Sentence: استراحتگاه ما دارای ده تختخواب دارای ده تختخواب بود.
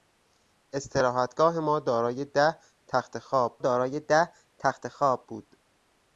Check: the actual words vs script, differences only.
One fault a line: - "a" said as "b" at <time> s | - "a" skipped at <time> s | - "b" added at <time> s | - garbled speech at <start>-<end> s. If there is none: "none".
none